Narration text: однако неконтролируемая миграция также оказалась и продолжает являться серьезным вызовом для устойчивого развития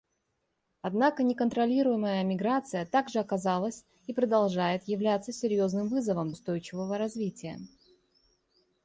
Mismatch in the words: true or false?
true